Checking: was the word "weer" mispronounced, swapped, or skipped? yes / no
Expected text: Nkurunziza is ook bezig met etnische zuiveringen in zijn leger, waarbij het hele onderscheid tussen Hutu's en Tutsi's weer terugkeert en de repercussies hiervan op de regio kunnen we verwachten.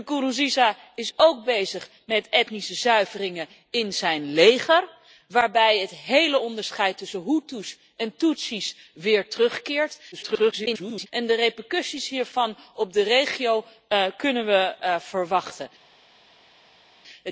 no